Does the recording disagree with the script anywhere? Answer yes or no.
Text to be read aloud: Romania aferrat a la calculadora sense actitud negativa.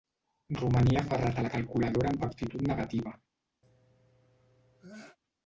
yes